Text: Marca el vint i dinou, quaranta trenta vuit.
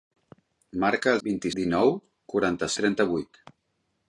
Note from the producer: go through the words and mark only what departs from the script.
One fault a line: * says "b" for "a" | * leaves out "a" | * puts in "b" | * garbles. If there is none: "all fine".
all fine